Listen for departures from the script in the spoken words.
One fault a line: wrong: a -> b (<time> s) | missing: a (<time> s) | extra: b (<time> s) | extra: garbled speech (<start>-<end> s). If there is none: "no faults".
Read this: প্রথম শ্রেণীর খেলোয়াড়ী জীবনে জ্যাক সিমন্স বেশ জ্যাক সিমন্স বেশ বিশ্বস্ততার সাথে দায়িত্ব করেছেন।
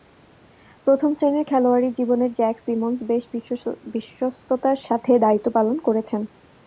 missing: জ্যাক সিমন্স বেশ (3.2 s)
extra: পালন (5.6 s)